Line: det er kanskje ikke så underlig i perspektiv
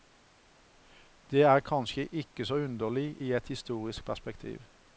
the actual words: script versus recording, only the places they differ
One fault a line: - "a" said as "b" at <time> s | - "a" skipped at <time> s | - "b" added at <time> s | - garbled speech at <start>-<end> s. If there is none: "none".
- "et historisk" added at 3.3 s